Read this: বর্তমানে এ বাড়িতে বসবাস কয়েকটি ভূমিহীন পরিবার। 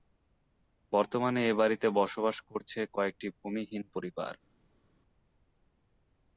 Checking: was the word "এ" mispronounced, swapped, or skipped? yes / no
no